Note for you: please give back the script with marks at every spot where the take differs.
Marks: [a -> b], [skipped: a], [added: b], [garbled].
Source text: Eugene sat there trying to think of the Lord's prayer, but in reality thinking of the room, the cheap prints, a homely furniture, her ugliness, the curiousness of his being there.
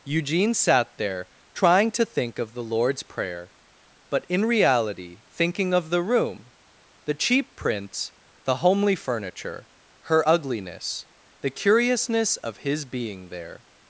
Eugene sat there trying to think of the Lord's prayer, but in reality thinking of the room, the cheap prints, [a -> the] homely furniture, her ugliness, the curiousness of his being there.